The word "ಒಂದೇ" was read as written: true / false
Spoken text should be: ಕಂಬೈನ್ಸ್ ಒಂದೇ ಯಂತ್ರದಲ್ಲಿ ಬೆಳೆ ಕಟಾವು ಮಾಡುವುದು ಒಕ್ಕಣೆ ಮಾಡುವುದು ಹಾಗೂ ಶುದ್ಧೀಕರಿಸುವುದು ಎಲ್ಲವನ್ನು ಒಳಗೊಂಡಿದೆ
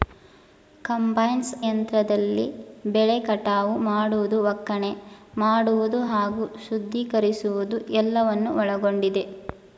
false